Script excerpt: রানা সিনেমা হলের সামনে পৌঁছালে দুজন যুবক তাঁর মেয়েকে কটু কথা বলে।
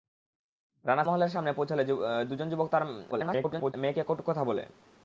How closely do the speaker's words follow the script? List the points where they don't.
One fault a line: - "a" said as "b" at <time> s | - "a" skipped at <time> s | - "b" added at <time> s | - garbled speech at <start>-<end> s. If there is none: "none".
- garbled speech at 3.1-3.7 s